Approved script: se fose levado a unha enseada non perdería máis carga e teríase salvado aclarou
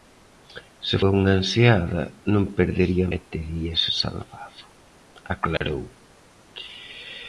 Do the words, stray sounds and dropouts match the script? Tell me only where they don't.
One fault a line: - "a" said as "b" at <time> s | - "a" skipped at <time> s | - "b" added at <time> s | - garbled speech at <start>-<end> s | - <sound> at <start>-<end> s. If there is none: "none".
- "fose levado" skipped at 1.0 s
- "máis carga" skipped at 3.1 s
- dropout at 5.6-5.6 s